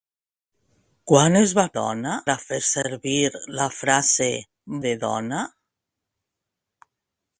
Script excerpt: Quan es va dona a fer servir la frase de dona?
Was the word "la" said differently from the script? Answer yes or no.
no